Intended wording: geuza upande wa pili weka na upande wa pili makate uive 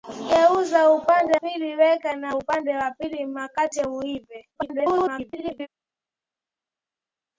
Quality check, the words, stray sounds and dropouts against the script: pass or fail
fail